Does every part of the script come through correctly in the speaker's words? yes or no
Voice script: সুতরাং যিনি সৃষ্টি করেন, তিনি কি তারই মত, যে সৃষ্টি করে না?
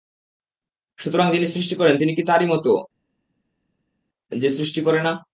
yes